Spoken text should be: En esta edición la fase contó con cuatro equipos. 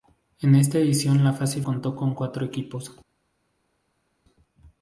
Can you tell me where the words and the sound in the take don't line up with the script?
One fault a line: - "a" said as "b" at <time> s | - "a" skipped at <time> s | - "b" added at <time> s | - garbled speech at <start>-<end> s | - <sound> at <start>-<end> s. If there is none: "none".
none